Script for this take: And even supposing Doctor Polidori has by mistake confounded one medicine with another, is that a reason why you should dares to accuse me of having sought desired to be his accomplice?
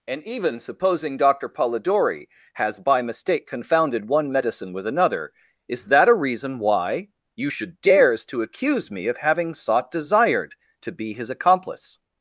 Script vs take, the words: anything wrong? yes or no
no